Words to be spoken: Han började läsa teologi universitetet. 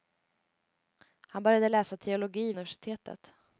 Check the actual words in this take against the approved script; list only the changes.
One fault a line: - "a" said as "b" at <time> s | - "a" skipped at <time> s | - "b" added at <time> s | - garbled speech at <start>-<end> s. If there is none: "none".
none